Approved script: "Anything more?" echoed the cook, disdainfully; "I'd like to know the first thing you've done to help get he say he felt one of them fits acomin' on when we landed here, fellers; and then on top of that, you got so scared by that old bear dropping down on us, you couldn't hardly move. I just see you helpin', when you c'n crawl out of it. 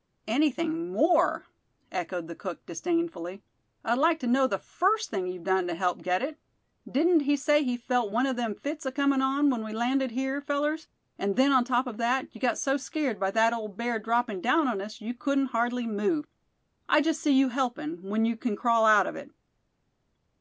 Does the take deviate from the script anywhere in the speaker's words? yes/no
yes